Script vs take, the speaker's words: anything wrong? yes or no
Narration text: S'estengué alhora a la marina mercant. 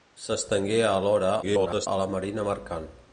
yes